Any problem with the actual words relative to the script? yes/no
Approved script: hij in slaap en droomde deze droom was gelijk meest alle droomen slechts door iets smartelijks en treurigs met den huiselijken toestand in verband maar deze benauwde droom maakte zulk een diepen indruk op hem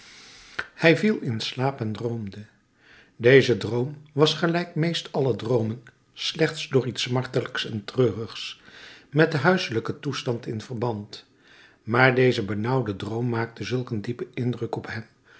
yes